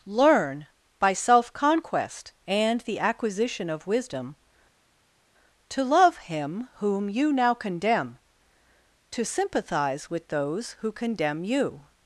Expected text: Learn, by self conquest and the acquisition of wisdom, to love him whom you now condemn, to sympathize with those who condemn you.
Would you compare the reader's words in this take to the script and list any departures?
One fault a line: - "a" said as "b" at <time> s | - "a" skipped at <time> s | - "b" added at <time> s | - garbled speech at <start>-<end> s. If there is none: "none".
none